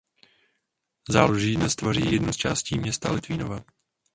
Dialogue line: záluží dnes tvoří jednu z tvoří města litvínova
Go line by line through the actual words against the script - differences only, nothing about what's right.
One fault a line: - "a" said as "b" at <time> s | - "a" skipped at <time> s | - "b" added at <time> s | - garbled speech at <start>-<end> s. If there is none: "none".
- "tvoří" said as "částí" at 2.4 s